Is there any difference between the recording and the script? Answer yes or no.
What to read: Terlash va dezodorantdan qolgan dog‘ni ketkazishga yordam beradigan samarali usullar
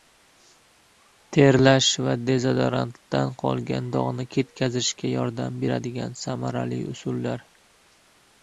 no